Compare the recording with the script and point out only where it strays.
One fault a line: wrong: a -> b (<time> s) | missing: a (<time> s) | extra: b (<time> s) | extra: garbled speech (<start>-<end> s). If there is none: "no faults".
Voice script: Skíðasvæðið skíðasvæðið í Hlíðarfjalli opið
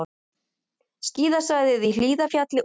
missing: skíðasvæðið (1.9 s)